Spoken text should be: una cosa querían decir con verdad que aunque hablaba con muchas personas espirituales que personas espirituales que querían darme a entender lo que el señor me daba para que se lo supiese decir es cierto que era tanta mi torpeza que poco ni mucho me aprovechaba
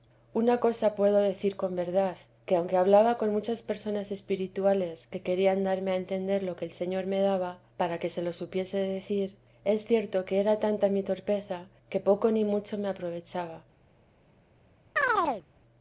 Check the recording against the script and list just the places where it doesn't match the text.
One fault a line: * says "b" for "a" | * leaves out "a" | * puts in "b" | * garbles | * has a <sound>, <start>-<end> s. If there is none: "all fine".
* says "puedo" for "querían"
* leaves out "personas espirituales que"
* has a chirp, 15.0-15.4 s